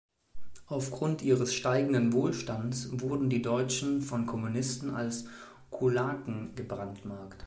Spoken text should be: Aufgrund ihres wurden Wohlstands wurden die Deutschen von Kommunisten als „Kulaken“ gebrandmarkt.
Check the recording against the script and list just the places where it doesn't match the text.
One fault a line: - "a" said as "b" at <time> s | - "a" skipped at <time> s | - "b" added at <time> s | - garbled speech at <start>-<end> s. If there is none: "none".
- "wurden" said as "steigenden" at 1.5 s